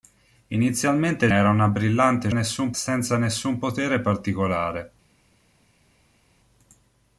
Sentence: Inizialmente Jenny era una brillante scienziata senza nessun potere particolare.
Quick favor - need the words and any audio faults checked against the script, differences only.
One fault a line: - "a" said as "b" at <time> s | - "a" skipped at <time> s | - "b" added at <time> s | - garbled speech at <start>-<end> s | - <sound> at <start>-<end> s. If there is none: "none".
- "Jenny" skipped at 1.3 s
- "scienziata" said as "nessun" at 2.3 s